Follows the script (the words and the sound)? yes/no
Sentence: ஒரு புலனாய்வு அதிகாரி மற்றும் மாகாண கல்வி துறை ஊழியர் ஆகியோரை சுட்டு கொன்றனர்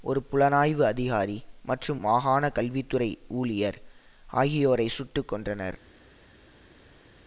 yes